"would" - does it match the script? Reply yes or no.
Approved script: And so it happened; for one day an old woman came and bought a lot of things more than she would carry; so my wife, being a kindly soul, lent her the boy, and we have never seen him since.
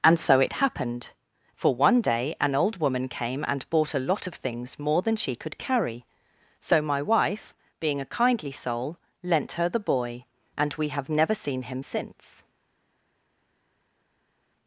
no